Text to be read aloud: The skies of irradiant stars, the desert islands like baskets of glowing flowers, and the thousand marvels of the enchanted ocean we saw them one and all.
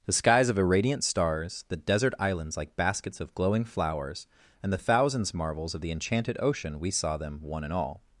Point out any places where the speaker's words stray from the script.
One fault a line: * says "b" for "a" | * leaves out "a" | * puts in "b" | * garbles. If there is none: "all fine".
* says "thousands" for "thousand"